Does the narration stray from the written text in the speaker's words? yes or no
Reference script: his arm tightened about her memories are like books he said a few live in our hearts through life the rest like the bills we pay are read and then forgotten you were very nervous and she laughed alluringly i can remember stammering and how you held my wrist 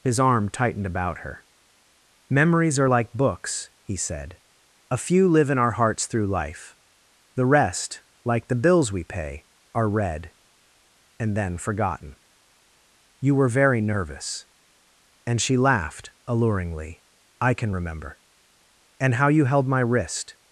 yes